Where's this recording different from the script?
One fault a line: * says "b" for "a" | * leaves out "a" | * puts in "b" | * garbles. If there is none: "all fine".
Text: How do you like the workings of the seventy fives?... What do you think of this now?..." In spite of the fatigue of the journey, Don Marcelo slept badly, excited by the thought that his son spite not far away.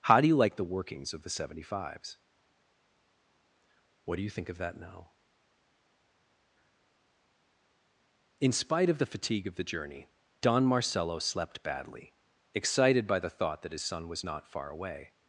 * says "that" for "this"
* says "was" for "spite"